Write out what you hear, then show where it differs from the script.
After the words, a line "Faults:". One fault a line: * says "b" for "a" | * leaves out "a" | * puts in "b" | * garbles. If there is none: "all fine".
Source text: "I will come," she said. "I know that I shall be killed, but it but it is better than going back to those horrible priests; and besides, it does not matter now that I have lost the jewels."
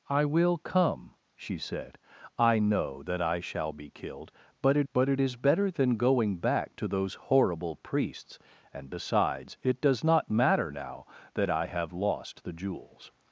"I will come," she said. "I know that I shall be killed, but it but it is better than going back to those horrible priests; and besides, it does not matter now that I have lost the jewels."
Faults:
all fine